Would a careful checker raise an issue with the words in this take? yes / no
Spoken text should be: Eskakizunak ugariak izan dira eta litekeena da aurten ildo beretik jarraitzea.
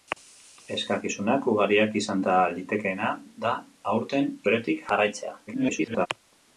yes